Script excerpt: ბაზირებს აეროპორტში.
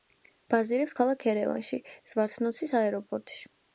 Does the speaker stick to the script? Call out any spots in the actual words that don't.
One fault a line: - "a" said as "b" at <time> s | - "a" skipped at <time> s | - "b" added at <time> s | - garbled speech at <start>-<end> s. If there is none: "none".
- "ქალაქ ერევანში ზვართნოცის" added at 1.0 s